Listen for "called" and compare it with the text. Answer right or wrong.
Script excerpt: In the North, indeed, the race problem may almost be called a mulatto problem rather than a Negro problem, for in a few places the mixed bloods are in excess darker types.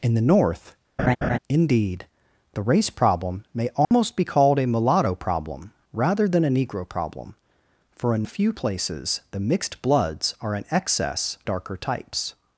right